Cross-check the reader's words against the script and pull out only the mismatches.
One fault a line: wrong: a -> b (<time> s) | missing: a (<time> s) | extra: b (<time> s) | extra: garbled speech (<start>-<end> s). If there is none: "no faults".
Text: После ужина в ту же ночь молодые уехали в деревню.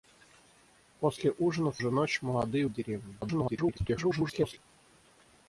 missing: ту (1.8 s)
missing: уехали (2.7 s)
extra: garbled speech (3.2-4.6 s)